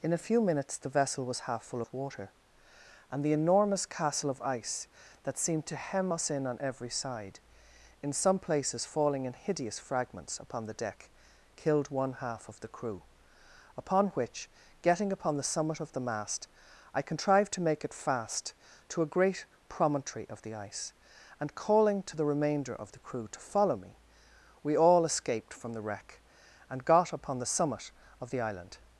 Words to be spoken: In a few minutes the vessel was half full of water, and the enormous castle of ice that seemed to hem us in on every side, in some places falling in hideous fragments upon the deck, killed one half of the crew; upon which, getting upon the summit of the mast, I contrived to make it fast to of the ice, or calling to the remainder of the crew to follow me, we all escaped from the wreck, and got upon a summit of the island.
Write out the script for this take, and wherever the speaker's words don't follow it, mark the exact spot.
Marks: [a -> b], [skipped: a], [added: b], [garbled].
In a few minutes the vessel was half full of water, and the enormous castle of ice that seemed to hem us in on every side, in some places falling in hideous fragments upon the deck, killed one half of the crew; upon which, getting upon the summit of the mast, I contrived to make it fast to [added: a great promontory] of the ice, [or -> and] calling to the remainder of the crew to follow me, we all escaped from the wreck, and got upon [a -> the] summit of the island.